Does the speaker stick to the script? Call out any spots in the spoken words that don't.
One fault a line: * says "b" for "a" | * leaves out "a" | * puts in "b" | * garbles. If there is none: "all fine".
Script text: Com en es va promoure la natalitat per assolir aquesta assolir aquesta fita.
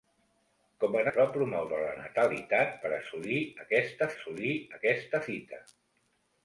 all fine